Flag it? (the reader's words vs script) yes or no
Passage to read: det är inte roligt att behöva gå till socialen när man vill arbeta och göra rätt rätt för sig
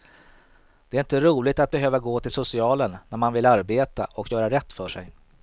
yes